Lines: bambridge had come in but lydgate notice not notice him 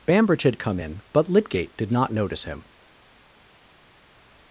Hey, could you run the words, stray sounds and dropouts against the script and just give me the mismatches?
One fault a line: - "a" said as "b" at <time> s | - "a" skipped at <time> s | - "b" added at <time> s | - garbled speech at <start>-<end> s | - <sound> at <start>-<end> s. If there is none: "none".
- "notice" said as "did" at 1.8 s